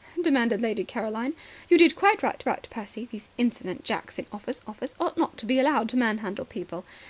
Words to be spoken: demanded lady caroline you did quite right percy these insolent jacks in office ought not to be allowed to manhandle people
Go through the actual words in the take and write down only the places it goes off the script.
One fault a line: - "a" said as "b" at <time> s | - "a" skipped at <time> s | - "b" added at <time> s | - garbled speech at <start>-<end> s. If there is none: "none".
- "right" added at 2.4 s
- "office" added at 4.7 s